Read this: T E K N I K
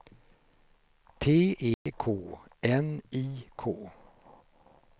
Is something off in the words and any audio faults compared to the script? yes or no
yes